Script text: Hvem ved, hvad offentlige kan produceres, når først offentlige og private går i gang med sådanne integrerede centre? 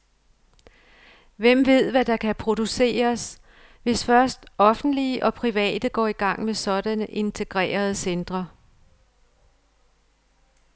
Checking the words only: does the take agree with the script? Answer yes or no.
no